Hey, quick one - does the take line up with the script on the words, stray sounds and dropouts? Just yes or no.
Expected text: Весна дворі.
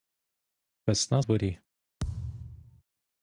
no